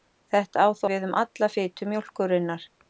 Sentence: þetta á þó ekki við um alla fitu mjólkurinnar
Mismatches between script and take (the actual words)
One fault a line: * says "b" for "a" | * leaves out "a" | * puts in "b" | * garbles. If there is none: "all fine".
* leaves out "ekki"